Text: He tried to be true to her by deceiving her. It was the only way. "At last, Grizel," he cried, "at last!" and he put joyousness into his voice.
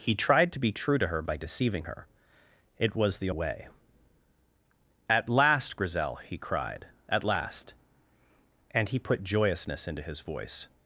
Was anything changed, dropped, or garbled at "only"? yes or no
yes